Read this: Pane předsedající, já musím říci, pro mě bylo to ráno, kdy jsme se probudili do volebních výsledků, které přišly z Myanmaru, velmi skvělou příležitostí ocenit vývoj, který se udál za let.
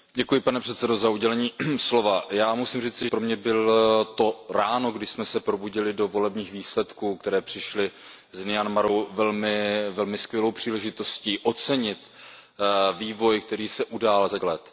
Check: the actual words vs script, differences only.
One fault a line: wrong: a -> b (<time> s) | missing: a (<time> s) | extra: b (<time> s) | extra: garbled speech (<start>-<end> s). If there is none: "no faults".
no faults